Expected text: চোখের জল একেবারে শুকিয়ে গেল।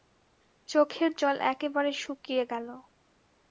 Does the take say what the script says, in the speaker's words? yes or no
yes